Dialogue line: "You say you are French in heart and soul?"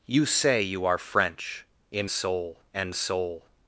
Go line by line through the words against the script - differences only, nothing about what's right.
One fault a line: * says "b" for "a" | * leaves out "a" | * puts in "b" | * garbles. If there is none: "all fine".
* says "soul" for "heart"